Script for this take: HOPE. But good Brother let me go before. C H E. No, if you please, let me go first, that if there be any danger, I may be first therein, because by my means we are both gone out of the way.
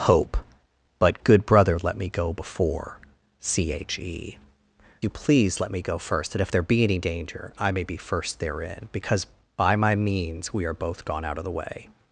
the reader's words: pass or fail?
fail